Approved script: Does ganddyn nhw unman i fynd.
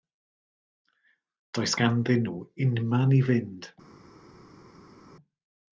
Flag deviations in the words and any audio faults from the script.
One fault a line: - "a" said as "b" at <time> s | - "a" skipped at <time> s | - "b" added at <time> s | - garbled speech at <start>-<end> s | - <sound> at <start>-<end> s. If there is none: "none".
none